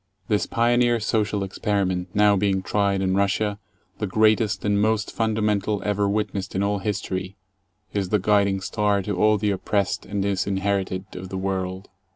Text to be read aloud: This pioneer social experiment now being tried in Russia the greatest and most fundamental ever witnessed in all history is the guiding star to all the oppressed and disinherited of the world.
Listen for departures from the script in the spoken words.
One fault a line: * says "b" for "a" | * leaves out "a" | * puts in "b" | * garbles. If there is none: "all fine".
all fine